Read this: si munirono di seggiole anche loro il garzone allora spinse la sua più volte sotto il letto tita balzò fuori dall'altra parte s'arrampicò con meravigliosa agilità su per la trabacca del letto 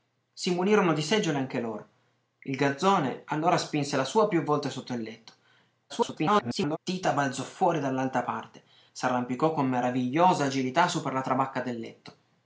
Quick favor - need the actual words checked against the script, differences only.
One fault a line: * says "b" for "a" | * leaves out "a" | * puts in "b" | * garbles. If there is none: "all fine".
* garbles